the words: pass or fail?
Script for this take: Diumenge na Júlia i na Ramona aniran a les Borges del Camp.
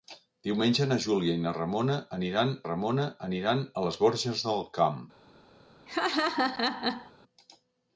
fail